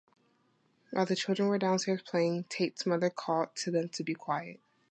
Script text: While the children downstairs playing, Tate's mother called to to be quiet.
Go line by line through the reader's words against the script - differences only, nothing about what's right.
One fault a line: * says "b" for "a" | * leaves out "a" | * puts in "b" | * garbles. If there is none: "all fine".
* puts in "were"
* puts in "them"